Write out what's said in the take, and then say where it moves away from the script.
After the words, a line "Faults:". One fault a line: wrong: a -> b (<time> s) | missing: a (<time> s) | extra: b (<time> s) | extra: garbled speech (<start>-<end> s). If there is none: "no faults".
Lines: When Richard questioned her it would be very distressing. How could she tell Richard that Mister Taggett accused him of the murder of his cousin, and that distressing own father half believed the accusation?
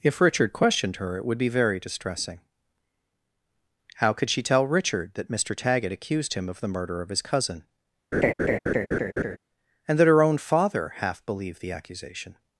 If Richard questioned her it would be very distressing. How could she tell Richard that Mister Taggett accused him of the murder of his cousin, and that her own father half believed the accusation?
Faults:
wrong: When -> If (0.0 s)
wrong: distressing -> her (10.1 s)